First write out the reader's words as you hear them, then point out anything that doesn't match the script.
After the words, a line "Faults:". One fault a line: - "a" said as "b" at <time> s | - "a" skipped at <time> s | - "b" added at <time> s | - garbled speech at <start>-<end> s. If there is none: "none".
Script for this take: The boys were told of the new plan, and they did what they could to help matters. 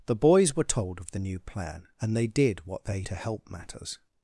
The boys were told of the new plan, and they did what they to help matters.
Faults:
- "could" skipped at 3.0 s